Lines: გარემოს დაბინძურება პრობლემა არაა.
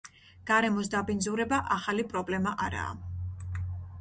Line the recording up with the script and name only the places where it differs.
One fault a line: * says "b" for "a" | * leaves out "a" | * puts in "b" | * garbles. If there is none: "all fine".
* puts in "ახალი"